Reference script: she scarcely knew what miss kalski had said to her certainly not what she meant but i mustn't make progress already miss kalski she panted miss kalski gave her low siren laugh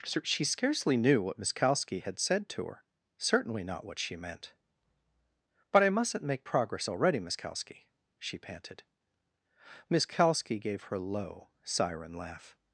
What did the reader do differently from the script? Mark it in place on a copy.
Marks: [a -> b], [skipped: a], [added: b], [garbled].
she scarcely knew what miss kalski had said to her certainly not what she meant but i mustn't make progress already miss kalski she panted miss kalski gave her low siren laugh